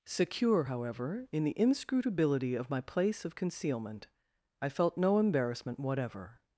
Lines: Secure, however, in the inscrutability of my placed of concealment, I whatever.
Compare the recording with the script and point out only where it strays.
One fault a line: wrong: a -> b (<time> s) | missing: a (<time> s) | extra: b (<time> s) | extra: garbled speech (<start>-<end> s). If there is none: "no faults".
wrong: placed -> place (2.8 s)
extra: felt no embarrassment (4.7 s)